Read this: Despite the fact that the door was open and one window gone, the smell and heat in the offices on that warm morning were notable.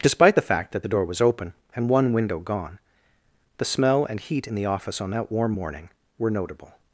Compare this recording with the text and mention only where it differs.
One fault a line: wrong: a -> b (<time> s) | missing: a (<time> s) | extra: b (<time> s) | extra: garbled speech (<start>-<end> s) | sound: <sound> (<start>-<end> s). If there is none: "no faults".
wrong: offices -> office (4.7 s)